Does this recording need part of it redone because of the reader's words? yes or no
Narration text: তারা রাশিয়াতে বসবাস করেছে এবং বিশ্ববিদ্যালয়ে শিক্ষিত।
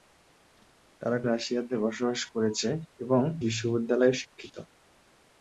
no